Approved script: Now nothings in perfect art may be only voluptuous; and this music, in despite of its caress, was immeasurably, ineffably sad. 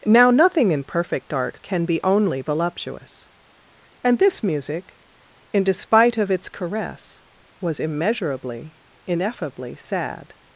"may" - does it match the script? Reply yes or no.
no